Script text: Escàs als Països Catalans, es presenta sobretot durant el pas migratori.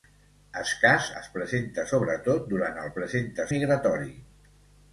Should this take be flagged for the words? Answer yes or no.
yes